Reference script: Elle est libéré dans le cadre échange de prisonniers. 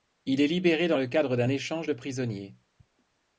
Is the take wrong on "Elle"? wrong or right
wrong